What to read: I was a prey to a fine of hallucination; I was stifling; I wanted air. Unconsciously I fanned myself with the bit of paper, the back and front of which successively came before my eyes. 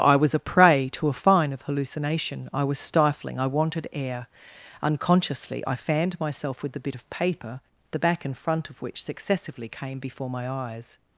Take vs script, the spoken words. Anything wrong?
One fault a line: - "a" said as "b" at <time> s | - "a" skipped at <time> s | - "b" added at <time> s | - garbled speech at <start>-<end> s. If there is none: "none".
none